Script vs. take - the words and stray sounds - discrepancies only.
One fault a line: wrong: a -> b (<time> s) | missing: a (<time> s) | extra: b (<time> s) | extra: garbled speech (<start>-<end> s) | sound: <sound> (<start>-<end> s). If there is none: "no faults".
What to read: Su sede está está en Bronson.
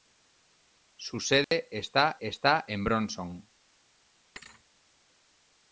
sound: dropout (1.4-1.5 s)
sound: thud (4.4-4.6 s)